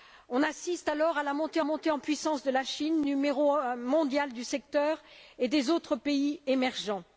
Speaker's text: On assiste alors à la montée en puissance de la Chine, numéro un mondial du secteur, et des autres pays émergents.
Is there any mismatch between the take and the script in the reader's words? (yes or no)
yes